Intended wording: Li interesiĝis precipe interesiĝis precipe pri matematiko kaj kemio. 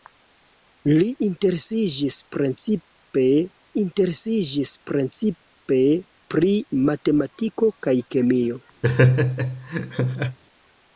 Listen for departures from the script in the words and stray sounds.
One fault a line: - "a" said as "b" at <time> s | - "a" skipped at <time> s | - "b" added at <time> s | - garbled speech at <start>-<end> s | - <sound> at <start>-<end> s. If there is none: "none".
- laugh at 8.8-10.4 s